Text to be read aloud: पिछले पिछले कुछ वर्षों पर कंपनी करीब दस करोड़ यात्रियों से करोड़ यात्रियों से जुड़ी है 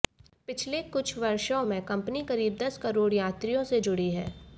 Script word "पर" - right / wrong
wrong